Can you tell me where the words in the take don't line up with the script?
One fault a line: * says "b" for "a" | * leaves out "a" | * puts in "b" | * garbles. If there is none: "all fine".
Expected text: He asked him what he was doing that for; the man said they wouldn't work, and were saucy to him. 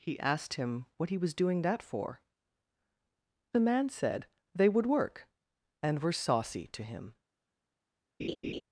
* says "would" for "wouldn't"